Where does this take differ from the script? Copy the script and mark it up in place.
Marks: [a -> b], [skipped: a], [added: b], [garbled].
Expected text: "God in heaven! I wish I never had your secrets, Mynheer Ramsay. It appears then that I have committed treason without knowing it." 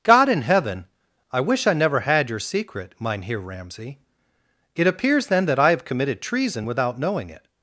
"God in heaven! I wish I never had your [secrets, -> secret] Mynheer Ramsay. It appears then that I have committed treason without knowing it."